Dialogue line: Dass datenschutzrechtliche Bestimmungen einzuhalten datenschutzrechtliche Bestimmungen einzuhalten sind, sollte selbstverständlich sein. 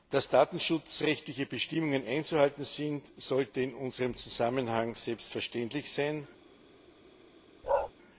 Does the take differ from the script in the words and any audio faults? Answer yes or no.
yes